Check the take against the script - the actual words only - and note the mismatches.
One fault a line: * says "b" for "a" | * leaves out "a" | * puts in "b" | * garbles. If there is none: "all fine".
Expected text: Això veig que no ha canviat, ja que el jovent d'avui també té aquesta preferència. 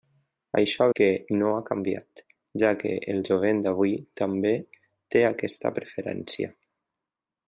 * leaves out "veig"